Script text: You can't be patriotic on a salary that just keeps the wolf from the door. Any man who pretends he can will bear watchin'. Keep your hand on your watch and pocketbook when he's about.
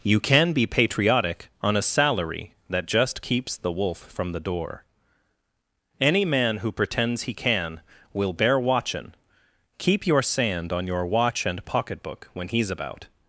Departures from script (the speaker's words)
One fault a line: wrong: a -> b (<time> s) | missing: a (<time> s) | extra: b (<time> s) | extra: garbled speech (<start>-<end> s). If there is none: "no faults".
wrong: can't -> can (0.2 s)
wrong: hand -> sand (10.2 s)